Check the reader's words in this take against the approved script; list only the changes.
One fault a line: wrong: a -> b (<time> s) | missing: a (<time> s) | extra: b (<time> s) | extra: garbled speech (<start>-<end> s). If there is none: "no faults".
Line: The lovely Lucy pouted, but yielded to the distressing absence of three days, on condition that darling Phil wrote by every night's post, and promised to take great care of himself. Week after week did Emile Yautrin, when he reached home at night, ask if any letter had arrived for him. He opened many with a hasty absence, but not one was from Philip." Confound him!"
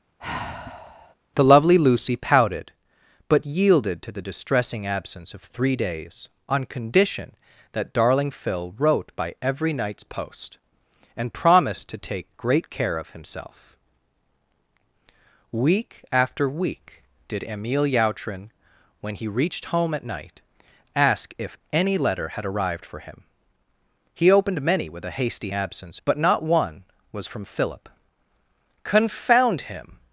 no faults